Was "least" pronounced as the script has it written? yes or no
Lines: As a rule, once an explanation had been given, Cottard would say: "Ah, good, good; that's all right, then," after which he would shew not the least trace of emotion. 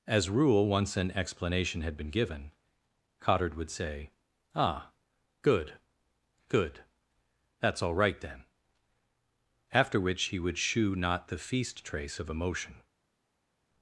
no